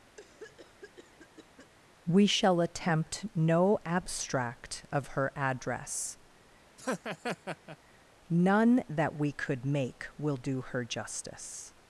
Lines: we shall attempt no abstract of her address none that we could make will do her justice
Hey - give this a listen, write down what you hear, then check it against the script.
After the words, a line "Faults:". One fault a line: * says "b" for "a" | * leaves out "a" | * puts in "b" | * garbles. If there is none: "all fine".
we shall attempt no abstract of her address none that we could make will do her justice
Faults:
all fine